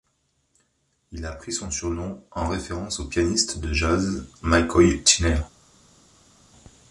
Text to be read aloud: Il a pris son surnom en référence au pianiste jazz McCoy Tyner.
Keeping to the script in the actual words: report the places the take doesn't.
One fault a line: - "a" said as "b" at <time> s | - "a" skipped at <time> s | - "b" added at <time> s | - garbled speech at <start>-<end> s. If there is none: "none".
- "de" added at 3.6 s